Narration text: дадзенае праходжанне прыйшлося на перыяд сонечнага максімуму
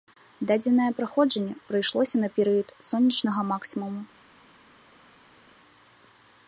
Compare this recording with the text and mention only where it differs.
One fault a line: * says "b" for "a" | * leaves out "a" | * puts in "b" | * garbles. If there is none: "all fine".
all fine